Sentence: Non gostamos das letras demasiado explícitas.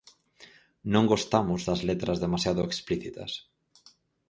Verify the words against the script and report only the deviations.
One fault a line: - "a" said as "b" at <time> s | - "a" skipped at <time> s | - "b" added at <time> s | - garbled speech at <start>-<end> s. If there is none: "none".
none